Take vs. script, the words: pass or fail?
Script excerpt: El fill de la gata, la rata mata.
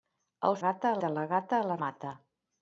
fail